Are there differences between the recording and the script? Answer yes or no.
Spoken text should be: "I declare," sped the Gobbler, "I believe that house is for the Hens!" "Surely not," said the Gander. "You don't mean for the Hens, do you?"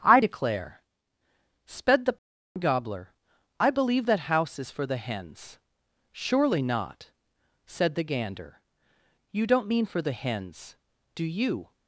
no